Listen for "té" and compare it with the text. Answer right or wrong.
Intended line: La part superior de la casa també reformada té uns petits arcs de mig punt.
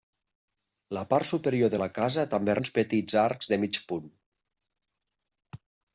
wrong